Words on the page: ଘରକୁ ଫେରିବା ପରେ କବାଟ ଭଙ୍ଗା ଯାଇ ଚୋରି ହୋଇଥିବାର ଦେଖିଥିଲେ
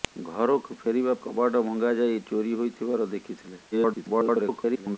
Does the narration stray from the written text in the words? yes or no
yes